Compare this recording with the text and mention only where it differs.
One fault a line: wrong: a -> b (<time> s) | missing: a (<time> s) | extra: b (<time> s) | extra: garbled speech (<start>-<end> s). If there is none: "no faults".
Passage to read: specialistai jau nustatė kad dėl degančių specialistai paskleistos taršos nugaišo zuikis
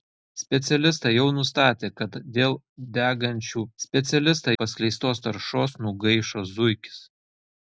no faults